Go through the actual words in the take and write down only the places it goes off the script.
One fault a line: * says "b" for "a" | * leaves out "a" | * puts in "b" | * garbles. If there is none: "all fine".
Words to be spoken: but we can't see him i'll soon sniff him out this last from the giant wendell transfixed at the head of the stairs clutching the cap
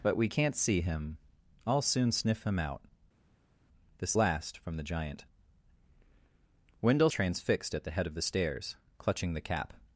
all fine